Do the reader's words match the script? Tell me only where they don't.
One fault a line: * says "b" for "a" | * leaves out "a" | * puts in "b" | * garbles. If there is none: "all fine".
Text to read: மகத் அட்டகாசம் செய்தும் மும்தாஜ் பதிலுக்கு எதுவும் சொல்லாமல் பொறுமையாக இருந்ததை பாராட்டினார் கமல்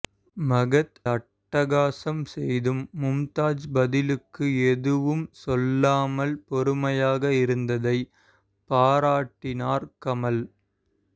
all fine